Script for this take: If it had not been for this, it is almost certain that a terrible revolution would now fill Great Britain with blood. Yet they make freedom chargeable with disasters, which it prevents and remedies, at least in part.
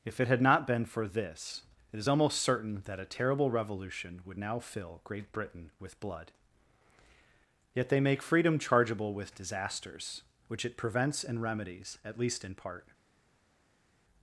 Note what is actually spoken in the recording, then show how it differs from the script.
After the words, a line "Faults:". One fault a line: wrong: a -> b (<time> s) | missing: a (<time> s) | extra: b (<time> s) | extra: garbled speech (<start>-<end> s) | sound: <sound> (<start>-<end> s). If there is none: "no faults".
If it had not been for this, it is almost certain that a terrible revolution would now fill Great Britain with blood. Yet they make freedom chargeable with disasters, which it prevents and remedies, at least in part.
Faults:
no faults